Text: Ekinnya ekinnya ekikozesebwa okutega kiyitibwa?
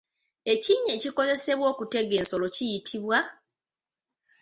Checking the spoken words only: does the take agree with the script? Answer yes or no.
no